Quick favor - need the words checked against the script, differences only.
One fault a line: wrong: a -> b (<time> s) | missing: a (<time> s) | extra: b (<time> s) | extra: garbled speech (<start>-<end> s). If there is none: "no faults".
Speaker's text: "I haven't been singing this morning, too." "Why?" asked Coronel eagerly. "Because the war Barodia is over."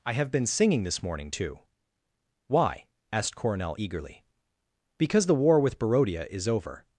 wrong: haven't -> have (0.1 s)
extra: with (5.6 s)